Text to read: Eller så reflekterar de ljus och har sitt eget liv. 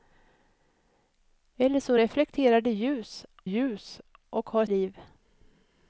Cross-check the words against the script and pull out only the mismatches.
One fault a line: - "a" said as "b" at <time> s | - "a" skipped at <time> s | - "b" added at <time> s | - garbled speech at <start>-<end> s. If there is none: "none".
- "ljus" added at 3.4 s
- "sitt eget" skipped at 4.6 s